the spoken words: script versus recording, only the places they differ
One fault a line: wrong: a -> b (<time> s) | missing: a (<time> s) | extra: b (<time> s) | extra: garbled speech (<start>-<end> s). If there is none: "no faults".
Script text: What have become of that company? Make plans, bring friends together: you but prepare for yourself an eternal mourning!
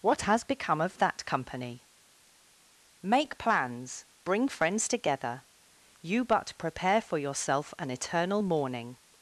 wrong: have -> has (0.2 s)